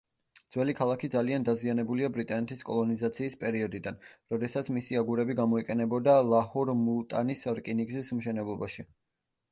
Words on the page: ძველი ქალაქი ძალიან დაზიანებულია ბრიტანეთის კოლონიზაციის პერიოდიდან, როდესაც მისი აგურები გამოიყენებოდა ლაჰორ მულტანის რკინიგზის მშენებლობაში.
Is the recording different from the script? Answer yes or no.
no